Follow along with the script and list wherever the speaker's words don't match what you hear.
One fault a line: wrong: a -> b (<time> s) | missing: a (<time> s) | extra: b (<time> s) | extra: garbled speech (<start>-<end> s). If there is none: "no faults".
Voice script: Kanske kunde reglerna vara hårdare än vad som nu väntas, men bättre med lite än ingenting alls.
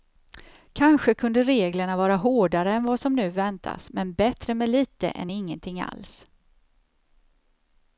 no faults